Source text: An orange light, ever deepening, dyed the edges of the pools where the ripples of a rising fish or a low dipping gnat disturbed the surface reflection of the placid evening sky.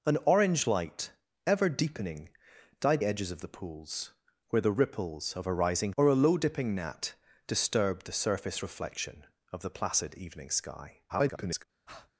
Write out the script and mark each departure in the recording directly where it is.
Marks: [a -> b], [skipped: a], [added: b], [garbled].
An orange light, ever deepening, dyed [skipped: the] edges of the pools where the ripples of a rising [skipped: fish] or a low dipping gnat disturbed the surface reflection of the placid evening sky. [garbled]